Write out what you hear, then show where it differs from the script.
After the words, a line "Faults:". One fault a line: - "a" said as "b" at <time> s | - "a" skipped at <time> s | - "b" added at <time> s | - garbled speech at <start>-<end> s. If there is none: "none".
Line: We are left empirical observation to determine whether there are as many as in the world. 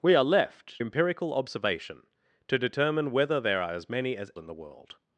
We are left empirical observation to determine whether there are as many as in the world.
Faults:
none